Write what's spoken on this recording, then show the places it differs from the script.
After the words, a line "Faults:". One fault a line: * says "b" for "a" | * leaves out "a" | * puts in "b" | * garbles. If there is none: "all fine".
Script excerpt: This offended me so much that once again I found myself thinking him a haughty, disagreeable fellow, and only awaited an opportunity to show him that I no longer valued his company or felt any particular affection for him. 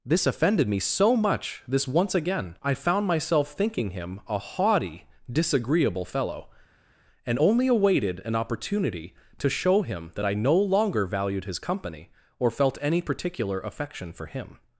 This offended me so much this once again I found myself thinking him a haughty, disagreeable fellow, and only awaited an opportunity to show him that I no longer valued his company or felt any particular affection for him.
Faults:
* says "this" for "that"